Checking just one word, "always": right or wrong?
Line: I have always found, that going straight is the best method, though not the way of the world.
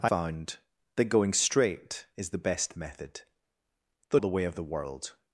wrong